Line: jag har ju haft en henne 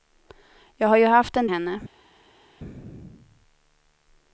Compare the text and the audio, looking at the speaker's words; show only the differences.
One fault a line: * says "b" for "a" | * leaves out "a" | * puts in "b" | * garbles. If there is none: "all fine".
all fine